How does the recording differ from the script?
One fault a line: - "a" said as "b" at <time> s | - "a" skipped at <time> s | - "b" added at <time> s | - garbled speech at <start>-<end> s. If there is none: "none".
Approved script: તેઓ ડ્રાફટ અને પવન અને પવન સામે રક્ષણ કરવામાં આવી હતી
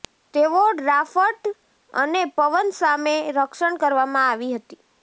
- "અને પવન" skipped at 2.7 s